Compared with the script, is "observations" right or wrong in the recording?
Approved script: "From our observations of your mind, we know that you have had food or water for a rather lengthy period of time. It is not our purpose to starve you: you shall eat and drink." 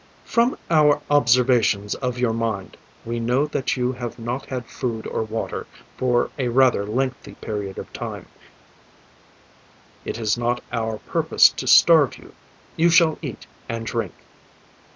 right